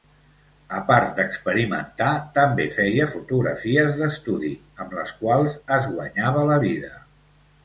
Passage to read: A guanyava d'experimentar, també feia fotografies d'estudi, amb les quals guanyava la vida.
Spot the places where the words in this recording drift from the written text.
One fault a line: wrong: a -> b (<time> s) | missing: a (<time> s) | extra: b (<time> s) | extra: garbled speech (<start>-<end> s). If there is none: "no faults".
wrong: guanyava -> part (0.8 s)
extra: es (5.8 s)